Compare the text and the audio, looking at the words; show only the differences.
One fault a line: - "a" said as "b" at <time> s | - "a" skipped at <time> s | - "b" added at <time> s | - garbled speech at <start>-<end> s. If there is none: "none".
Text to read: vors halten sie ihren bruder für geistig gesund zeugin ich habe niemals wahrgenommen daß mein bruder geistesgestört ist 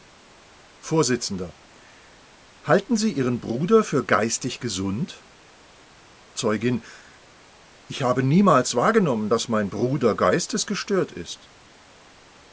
none